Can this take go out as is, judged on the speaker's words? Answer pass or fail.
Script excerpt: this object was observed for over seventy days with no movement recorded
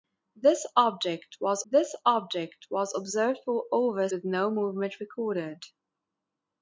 fail